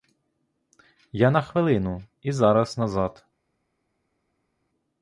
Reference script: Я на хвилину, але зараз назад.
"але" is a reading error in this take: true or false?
true